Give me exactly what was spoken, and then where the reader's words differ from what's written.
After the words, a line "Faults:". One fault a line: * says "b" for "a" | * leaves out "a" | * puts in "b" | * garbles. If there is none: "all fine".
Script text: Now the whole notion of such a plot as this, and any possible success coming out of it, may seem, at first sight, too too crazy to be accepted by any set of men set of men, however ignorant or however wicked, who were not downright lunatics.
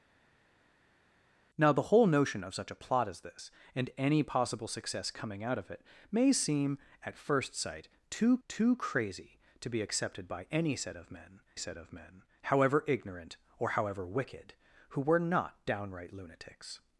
Now the whole notion of such a plot as this, and any possible success coming out of it, may seem, at first sight, too too crazy to be accepted by any set of men set of men, however ignorant or however wicked, who were not downright lunatics.
Faults:
all fine